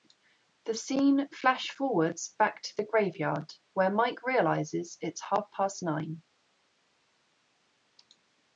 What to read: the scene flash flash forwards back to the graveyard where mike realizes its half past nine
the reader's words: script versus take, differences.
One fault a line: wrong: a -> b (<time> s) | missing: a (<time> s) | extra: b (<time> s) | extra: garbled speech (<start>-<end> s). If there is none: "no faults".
missing: flash (1.7 s)